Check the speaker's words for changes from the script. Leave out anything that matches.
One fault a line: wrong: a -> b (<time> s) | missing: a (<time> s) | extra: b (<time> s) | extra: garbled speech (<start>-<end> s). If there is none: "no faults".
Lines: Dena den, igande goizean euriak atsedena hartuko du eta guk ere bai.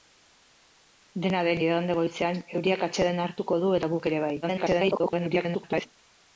extra: garbled speech (4.4-5.9 s)